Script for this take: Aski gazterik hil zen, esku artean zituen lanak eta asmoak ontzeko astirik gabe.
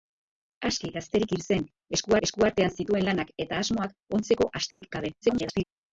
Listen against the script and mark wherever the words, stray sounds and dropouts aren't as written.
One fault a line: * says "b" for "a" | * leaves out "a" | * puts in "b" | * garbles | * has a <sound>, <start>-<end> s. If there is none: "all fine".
* puts in "esku"
* has a dropout, 4.7-4.8 s
* garbles